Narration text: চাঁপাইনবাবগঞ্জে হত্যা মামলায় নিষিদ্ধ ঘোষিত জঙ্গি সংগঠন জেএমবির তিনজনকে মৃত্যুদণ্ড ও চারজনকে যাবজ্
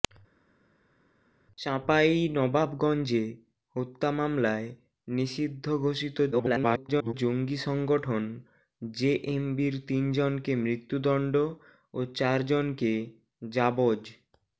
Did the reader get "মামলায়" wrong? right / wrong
right